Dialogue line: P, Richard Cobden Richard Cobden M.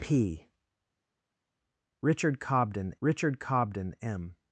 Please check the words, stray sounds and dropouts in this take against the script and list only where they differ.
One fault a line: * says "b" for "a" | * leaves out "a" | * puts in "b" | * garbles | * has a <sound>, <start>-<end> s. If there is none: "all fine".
all fine